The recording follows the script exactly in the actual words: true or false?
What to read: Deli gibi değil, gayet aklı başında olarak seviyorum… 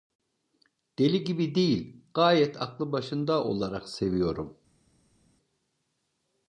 true